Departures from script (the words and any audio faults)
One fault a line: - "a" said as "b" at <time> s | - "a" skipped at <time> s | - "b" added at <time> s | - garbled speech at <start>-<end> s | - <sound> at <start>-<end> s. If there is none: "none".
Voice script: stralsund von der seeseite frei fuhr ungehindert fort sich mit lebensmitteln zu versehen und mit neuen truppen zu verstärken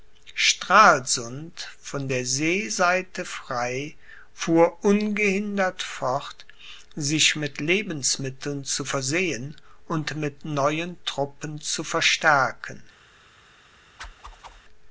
- whoosh at 14.0-14.6 s